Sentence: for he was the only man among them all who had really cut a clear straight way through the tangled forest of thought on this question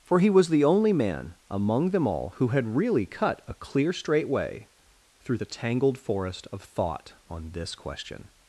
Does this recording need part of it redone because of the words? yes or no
no